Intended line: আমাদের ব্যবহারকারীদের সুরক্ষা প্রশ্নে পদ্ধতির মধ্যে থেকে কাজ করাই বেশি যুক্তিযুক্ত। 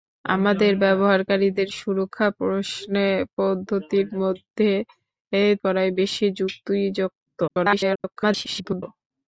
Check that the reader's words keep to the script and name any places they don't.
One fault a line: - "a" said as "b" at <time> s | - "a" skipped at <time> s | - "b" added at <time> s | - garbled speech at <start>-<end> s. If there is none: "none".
- "থেকে কাজ" skipped at 4.7 s
- garbled speech at 7.5-8.8 s